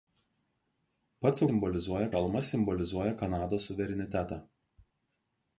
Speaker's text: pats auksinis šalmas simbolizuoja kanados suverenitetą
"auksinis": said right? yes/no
no